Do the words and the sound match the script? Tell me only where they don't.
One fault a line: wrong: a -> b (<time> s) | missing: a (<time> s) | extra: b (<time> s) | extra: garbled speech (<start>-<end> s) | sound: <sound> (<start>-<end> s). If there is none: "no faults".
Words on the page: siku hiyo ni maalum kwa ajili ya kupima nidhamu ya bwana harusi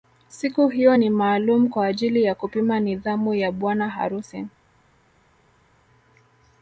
no faults